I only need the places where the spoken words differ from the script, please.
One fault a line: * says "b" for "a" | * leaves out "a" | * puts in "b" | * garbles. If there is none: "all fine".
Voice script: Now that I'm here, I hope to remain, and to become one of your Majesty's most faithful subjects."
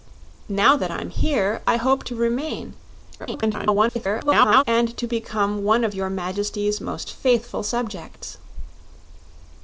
* garbles